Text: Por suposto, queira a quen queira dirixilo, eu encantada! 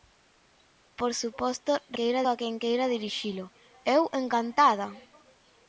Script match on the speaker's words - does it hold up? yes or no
yes